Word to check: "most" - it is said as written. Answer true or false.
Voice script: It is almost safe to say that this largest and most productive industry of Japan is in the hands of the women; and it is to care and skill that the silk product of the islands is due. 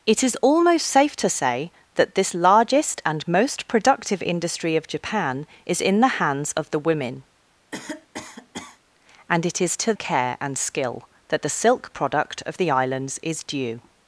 true